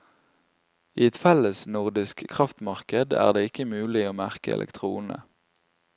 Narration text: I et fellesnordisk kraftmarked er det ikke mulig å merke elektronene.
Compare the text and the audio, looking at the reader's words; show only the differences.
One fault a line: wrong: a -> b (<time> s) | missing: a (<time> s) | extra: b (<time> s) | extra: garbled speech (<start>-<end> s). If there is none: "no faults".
no faults